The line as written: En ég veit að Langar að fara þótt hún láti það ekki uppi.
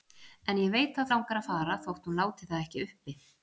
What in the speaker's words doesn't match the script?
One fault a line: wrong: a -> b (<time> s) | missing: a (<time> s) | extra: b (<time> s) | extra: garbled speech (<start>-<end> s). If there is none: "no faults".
no faults